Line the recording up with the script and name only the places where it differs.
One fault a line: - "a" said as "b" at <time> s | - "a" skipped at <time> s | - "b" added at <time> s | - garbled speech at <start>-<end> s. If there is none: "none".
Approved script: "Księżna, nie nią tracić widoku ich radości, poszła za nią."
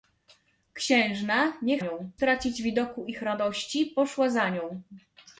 none